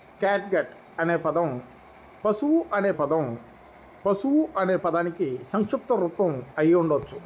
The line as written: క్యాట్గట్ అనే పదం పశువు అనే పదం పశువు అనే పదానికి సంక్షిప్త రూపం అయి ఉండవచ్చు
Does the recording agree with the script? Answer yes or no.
yes